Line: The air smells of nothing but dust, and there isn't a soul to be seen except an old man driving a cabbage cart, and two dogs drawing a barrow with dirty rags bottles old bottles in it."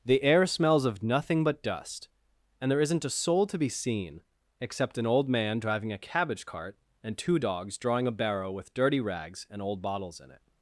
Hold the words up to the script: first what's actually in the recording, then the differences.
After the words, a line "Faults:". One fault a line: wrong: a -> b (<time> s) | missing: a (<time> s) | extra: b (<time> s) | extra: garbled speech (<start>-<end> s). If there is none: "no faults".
The air smells of nothing but dust, and there isn't a soul to be seen except an old man driving a cabbage cart, and two dogs drawing a barrow with dirty rags and old bottles in it."
Faults:
wrong: bottles -> and (9.5 s)